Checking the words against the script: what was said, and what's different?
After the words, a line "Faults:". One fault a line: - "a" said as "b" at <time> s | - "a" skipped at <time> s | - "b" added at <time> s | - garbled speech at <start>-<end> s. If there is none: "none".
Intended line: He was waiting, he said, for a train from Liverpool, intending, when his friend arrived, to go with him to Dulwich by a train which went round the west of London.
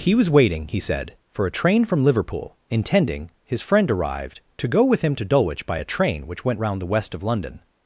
He was waiting, he said, for a train from Liverpool, intending, his friend arrived, to go with him to Dulwich by a train which went round the west of London.
Faults:
- "when" skipped at 3.3 s